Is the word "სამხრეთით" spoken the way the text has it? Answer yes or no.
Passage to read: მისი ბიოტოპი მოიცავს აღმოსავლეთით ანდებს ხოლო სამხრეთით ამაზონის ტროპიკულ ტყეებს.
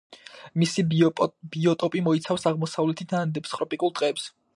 no